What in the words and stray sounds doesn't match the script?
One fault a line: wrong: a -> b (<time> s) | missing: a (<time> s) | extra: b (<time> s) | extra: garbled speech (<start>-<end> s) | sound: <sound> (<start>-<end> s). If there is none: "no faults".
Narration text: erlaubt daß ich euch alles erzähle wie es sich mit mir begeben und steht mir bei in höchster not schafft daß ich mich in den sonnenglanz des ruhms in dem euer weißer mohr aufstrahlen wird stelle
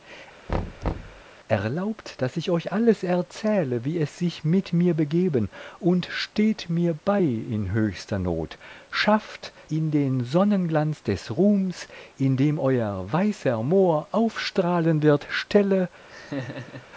sound: thud (0.5-1.2 s)
missing: daß ich mich (9.5 s)
sound: laugh (16.1-16.9 s)